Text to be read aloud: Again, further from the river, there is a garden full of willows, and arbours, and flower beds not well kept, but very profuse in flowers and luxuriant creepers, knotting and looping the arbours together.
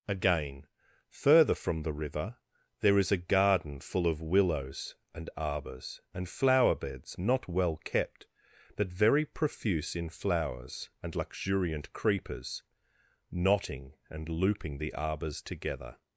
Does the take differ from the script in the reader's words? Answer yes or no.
no